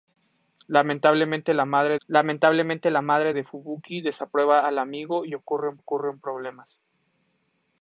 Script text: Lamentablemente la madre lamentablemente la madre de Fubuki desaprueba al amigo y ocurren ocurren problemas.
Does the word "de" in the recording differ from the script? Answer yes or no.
no